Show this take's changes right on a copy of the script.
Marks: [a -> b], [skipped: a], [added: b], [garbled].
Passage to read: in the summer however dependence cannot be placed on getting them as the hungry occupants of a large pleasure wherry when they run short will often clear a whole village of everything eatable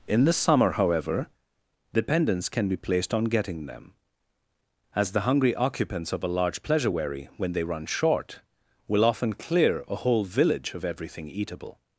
in the summer however dependence [cannot -> can] be placed on getting them as the hungry occupants of a large pleasure wherry when they run short will often clear a whole village of everything eatable